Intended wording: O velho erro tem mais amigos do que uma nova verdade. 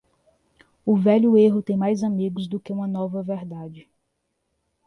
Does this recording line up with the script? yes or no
yes